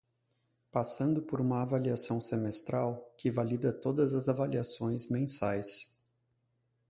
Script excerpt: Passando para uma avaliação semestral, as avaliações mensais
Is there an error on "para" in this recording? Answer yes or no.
yes